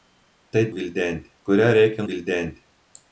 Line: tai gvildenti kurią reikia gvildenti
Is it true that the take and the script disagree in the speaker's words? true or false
false